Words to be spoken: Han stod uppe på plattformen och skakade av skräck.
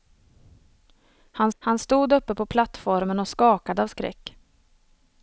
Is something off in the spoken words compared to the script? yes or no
yes